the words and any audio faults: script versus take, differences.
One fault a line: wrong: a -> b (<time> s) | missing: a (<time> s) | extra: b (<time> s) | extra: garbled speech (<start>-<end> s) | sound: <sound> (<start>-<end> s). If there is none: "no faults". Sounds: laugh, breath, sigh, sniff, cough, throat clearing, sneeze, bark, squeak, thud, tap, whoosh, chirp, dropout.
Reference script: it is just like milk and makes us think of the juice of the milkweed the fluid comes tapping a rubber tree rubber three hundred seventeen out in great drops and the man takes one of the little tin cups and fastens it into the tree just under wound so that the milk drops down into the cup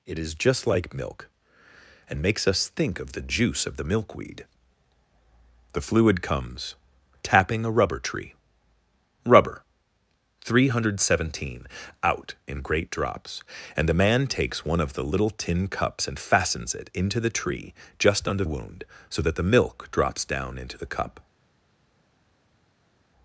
no faults